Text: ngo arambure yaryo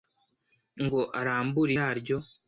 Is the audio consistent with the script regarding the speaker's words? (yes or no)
yes